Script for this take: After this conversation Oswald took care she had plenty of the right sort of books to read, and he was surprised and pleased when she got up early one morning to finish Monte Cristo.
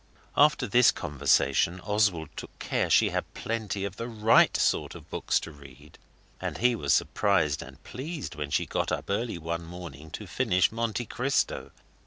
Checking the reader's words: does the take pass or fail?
pass